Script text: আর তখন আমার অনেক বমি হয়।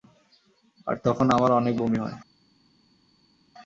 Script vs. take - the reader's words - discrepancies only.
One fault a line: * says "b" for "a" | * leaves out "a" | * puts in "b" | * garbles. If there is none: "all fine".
all fine